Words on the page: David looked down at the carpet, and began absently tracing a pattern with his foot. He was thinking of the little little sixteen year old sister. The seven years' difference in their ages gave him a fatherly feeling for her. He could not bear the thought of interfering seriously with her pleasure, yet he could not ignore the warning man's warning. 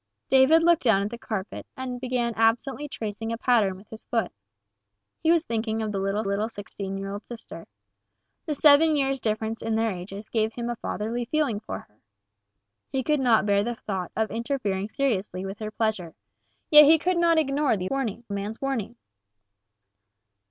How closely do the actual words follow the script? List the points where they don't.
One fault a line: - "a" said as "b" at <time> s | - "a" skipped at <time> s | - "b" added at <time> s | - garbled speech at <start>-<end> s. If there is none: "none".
none